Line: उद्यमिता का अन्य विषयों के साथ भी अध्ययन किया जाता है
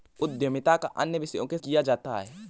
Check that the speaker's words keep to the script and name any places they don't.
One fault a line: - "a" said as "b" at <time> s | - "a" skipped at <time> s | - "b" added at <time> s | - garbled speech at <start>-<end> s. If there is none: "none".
- "साथ भी अध्ययन" skipped at 1.6 s